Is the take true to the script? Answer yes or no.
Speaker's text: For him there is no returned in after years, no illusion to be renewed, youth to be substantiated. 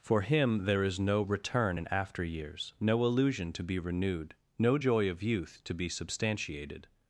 no